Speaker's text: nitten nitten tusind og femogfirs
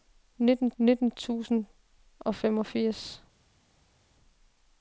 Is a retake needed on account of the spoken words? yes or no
no